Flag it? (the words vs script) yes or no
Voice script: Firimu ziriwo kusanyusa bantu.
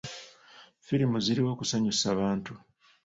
no